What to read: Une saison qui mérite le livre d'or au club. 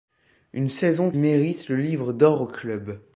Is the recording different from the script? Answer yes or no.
yes